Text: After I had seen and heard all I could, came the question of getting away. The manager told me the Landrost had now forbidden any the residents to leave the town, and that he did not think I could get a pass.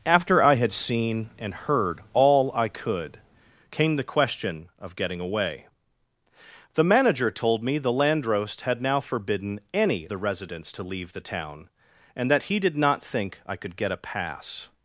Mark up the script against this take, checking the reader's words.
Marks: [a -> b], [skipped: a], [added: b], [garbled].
After I had seen and heard all I could, came the question of getting away. The manager told me the Landrost had now forbidden any the residents to leave the town, and that he did not think I could get a pass.